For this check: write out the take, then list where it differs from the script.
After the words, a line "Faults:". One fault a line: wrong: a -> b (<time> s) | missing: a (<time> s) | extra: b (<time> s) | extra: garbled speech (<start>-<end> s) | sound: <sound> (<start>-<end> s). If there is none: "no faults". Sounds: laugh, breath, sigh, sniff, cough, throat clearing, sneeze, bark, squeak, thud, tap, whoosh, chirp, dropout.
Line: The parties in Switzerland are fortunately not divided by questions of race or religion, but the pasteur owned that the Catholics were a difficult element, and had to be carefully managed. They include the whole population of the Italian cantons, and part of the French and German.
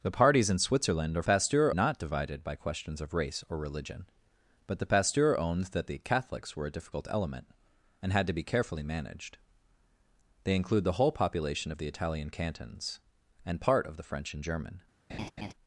The parties in Switzerland are pasteur not divided by questions of race or religion, but the pasteur owned that the Catholics were a difficult element, and had to be carefully managed. They include the whole population of the Italian cantons, and part of the French and German.
Faults:
wrong: fortunately -> pasteur (1.2 s)
sound: laugh (15.1-15.5 s)